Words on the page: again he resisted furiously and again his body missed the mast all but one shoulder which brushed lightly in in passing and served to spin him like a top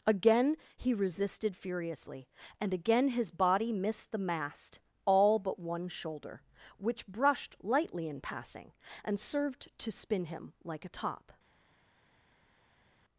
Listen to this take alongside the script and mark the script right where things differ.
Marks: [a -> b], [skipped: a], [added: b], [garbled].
again he resisted furiously and again his body missed the mast all but one shoulder which brushed lightly in [skipped: in] passing and served to spin him like a top